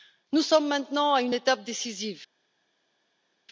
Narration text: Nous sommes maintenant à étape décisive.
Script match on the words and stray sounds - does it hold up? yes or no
no